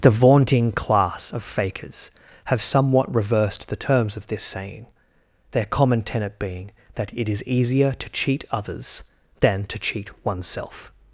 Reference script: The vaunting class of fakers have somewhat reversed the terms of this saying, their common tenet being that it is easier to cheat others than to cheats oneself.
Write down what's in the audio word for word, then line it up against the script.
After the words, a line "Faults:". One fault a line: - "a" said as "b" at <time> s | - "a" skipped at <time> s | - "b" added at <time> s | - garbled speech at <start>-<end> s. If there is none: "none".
The vaunting class of fakers have somewhat reversed the terms of this saying, their common tenet being that it is easier to cheat others than to cheat oneself.
Faults:
- "cheats" said as "cheat" at 9.8 s